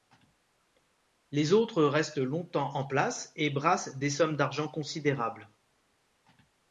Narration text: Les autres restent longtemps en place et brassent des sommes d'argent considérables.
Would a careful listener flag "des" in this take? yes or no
no